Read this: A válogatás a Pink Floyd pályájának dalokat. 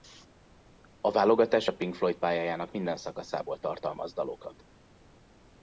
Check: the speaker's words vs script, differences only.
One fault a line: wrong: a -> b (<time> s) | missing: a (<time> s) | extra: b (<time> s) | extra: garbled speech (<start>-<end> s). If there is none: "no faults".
extra: minden szakaszából tartalmaz (2.7 s)